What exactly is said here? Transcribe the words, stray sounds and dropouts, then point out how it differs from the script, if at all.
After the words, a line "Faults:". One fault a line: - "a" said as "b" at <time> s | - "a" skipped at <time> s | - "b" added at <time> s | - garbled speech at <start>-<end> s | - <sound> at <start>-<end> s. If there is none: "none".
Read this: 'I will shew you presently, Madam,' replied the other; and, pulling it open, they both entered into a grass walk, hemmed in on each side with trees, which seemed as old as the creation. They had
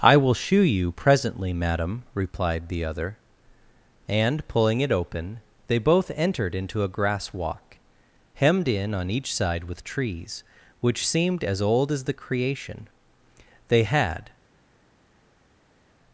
'I will shew you presently, Madam,' replied the other; and, pulling it open, they both entered into a grass walk, hemmed in on each side with trees, which seemed as old as the creation. They had
Faults:
none